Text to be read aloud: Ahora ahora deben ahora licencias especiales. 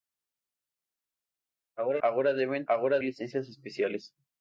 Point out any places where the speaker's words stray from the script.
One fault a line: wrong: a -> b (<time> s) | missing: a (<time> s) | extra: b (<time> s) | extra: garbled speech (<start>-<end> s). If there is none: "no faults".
no faults